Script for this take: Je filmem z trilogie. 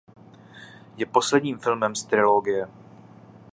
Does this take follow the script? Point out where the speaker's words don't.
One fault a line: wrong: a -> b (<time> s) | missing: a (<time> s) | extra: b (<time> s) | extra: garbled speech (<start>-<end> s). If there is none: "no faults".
extra: posledním (1.1 s)